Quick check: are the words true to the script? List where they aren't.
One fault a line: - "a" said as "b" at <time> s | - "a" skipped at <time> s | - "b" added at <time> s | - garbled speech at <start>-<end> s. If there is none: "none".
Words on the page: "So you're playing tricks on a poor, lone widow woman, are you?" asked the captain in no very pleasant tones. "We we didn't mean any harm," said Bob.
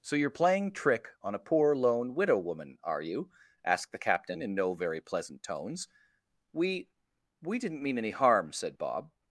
- "tricks" said as "trick" at 0.7 s